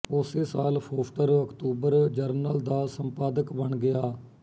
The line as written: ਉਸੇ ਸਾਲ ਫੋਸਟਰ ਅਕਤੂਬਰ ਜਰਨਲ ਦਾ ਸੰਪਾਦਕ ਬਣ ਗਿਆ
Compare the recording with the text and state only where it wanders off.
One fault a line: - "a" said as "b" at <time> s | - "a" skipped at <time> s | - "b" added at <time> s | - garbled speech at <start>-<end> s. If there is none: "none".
none